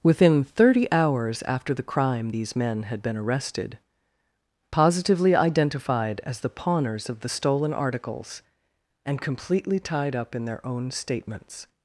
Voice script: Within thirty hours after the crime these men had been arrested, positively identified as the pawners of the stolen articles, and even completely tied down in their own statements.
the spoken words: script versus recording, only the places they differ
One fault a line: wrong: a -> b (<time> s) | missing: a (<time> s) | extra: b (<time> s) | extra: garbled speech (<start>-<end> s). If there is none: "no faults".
missing: even (9.2 s)
wrong: down -> up (10.1 s)